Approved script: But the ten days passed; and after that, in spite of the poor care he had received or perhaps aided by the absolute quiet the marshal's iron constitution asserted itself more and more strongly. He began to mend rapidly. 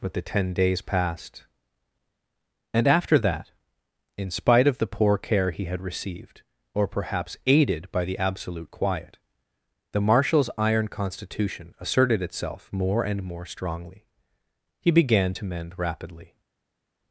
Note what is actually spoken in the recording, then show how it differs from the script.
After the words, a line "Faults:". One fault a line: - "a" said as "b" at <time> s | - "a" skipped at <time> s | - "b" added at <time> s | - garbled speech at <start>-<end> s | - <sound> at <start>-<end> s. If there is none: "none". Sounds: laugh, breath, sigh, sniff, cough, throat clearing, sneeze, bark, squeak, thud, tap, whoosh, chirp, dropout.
But the ten days passed; and after that, in spite of the poor care he had received or perhaps aided by the absolute quiet the marshal's iron constitution asserted itself more and more strongly. He began to mend rapidly.
Faults:
none